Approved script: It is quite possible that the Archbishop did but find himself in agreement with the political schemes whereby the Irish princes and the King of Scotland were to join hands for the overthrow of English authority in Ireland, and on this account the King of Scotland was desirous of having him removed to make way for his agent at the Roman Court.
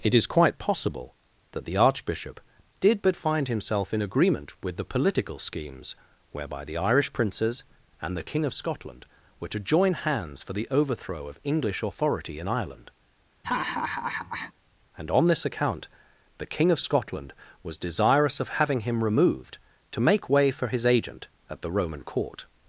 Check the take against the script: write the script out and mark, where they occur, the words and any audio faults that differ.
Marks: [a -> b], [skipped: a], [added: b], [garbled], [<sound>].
It is quite possible that the Archbishop did but find himself in agreement with the political schemes whereby the Irish princes and the King of Scotland were to join hands for the overthrow of English authority in Ireland, [laugh] and on this account the King of Scotland was desirous of having him removed to make way for his agent at the Roman Court.